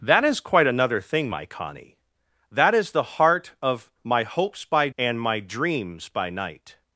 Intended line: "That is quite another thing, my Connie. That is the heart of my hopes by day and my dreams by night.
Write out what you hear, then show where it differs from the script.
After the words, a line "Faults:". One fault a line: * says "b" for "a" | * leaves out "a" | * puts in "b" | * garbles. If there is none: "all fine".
"That is quite another thing, my Connie. That is the heart of my hopes by and my dreams by night.
Faults:
* leaves out "day"